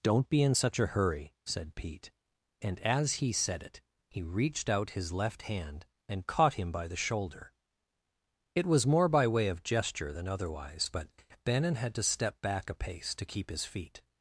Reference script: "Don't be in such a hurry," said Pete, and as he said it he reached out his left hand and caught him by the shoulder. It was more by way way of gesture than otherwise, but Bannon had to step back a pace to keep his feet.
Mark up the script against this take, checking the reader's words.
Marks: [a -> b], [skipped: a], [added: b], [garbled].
"Don't be in such a hurry," said Pete, and as he said it he reached out his left hand and caught him by the shoulder. It was more by way [skipped: way] of gesture than otherwise, but Bannon had to step back a pace to keep his feet.